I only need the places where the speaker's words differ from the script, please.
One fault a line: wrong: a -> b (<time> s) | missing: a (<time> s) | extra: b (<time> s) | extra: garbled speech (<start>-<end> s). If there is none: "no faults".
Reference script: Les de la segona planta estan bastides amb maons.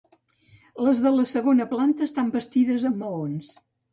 no faults